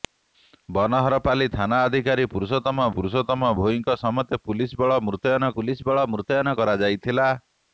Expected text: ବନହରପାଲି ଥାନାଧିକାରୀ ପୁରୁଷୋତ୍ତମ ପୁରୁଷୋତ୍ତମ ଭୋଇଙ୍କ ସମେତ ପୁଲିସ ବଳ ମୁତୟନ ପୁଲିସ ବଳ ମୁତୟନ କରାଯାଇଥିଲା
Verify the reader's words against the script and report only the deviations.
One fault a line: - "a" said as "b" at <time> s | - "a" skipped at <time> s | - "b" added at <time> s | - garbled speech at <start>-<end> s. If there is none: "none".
none